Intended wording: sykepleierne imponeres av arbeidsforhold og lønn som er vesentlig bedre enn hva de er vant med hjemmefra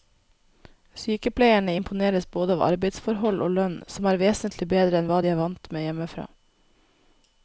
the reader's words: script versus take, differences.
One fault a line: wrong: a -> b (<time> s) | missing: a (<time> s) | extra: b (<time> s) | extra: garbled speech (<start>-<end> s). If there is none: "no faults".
extra: både (2.4 s)